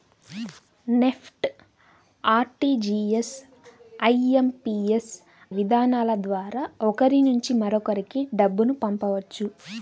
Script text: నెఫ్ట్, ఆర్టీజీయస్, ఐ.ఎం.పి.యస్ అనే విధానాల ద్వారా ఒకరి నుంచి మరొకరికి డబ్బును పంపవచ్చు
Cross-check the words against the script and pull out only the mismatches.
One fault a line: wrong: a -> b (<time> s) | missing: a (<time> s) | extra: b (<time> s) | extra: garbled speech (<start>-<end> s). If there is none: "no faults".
missing: అనే (5.1 s)